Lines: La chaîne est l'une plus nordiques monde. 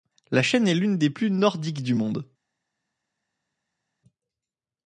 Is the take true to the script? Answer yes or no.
no